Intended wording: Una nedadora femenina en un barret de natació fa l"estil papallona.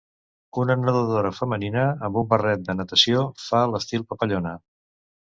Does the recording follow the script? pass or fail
fail